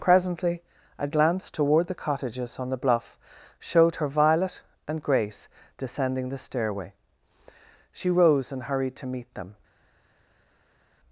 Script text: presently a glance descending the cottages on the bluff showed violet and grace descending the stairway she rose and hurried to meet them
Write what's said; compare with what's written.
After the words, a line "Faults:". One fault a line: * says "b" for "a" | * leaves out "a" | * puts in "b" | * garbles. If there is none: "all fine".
presently a glance toward the cottages on the bluff showed her violet and grace descending the stairway she rose and hurried to meet them
Faults:
* says "toward" for "descending"
* puts in "her"